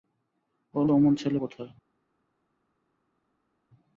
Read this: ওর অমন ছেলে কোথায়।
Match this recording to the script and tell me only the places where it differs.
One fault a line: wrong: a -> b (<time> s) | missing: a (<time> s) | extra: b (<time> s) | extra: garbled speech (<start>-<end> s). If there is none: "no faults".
no faults